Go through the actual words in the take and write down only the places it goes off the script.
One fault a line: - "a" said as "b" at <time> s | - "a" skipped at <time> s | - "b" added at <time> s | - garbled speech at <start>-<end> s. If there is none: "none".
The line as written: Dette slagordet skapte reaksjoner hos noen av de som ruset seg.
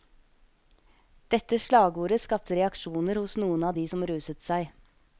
none